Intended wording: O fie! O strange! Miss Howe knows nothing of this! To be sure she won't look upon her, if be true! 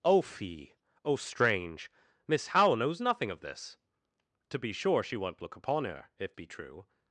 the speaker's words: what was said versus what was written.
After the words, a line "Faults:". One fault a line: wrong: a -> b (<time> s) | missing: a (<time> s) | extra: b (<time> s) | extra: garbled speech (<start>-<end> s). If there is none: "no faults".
O fie! O strange! Miss Howe knows nothing of this! To be sure she won't look upon her, if be true!
Faults:
no faults